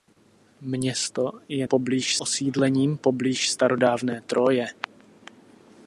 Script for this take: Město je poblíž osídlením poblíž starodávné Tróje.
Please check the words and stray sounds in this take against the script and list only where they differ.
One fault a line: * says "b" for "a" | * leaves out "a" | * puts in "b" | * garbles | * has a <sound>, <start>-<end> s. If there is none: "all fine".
all fine